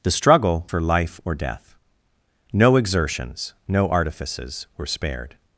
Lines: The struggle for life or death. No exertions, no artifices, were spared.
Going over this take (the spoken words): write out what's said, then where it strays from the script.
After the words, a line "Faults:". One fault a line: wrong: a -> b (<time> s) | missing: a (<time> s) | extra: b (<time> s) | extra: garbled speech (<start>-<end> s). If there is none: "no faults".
The struggle for life or death. No exertions, no artifices, were spared.
Faults:
no faults